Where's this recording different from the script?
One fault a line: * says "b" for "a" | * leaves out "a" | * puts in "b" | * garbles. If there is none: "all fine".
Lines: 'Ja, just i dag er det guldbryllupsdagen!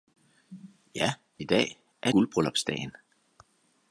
* leaves out "just"
* leaves out "det"